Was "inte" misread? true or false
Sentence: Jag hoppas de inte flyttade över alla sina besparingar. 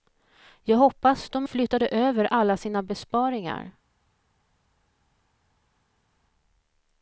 true